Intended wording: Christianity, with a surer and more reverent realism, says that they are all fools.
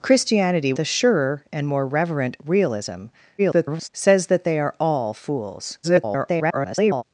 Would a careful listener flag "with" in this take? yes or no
yes